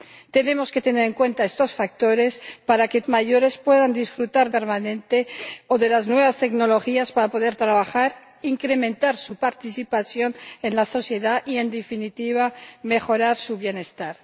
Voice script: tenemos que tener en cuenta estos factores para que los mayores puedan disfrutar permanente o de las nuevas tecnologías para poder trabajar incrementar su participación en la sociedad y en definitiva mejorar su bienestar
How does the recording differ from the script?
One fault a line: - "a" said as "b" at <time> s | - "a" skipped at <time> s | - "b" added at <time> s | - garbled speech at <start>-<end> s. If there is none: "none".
none